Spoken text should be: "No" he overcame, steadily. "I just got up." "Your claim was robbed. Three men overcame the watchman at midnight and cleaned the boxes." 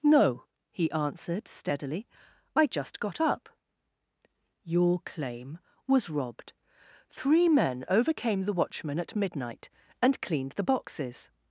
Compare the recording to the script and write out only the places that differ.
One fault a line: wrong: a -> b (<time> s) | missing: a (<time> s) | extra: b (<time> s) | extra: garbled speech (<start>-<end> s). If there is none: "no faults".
wrong: overcame -> answered (0.9 s)